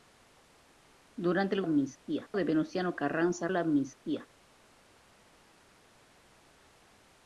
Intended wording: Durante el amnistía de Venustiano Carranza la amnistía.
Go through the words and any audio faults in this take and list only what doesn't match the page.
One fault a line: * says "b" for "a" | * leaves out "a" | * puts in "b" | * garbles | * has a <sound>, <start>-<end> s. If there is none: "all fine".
all fine